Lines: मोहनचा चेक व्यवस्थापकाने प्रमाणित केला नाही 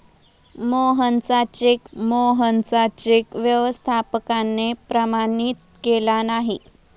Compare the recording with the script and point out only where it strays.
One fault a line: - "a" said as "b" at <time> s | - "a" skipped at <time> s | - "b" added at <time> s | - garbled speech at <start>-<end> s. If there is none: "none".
- "मोहनचा चेक" added at 1.9 s